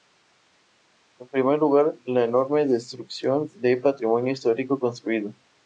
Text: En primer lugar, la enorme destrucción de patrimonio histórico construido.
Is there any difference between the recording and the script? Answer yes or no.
no